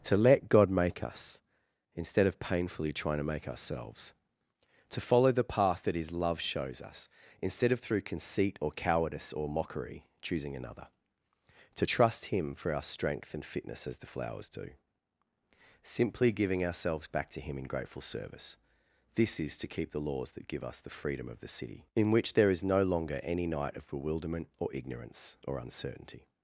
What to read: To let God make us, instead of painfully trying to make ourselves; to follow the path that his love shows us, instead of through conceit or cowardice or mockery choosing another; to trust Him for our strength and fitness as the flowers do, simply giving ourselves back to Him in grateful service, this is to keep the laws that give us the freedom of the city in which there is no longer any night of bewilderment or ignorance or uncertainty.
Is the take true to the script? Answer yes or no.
yes